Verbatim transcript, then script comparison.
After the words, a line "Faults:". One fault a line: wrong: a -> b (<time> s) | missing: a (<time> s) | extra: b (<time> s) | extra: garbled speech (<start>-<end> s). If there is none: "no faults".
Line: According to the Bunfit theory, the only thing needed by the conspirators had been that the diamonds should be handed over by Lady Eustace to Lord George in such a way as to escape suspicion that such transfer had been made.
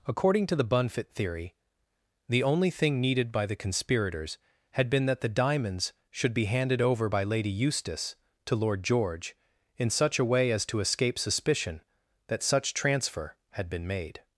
According to the Bunfit theory, the only thing needed by the conspirators had been that the diamonds should be handed over by Lady Eustace to Lord George in such a way as to escape suspicion that such transfer had been made.
Faults:
no faults